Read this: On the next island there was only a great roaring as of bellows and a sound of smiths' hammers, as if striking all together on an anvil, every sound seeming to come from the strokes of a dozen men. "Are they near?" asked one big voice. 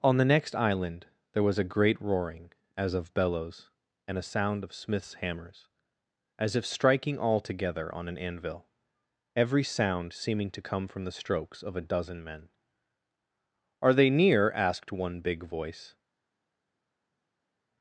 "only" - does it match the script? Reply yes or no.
no